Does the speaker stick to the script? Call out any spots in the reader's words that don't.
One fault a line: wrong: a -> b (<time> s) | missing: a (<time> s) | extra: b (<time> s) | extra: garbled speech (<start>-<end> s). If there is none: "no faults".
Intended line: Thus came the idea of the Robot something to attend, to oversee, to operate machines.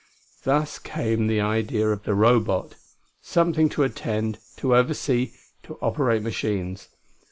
no faults